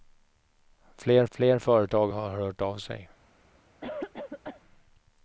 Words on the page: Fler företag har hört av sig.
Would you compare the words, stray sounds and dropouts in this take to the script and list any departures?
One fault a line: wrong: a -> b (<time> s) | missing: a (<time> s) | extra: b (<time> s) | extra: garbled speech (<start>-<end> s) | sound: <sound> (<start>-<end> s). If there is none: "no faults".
extra: fler (1.3 s)
sound: cough (3.8-4.6 s)